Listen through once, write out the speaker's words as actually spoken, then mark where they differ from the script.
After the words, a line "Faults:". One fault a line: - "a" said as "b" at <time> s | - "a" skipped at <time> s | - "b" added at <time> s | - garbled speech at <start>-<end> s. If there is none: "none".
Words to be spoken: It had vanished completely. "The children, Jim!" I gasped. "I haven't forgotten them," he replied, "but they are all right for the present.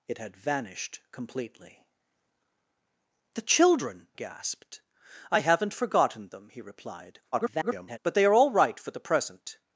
It had vanished completely. "The children, Gasped. "I haven't forgotten them," he replied, [garbled] "but they are all right for the present.
Faults:
- "Jim I" skipped at 4.1 s
- garbled speech at 7.3-8.0 s